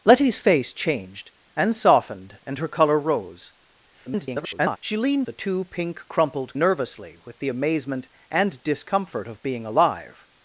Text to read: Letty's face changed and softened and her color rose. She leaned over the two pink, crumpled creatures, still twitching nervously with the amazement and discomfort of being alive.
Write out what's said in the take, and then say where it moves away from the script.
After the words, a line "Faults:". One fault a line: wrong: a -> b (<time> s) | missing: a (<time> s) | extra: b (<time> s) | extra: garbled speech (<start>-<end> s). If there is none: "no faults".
Letty's face changed and softened and her color rose. [garbled] She leaned the two pink, crumpled nervously with the amazement and discomfort of being alive.
Faults:
extra: garbled speech (4.1-4.8 s)
missing: over (5.3 s)
missing: creatures still twitching (6.5 s)